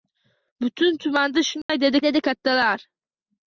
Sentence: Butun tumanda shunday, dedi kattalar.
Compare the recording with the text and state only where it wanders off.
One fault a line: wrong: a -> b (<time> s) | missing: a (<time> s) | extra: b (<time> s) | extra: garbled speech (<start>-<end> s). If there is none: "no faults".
extra: dedi (2.0 s)